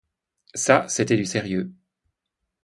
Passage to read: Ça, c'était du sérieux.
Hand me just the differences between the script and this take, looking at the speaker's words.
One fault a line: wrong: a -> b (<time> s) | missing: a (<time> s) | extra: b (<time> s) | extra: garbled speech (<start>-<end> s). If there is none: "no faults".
no faults